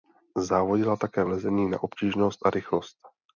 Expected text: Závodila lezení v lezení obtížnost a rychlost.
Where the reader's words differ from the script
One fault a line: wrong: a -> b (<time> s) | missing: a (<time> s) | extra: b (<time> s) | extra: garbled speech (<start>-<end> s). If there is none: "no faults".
wrong: lezení -> také (1.0 s)
extra: na (1.7 s)